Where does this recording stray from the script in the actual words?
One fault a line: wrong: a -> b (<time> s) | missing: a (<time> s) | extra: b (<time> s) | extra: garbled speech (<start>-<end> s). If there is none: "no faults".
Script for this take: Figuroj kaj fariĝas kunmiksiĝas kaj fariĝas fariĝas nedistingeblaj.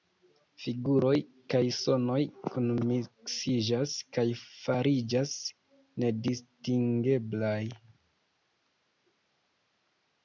wrong: fariĝas -> sonoj (1.8 s)
missing: fariĝas (5.3 s)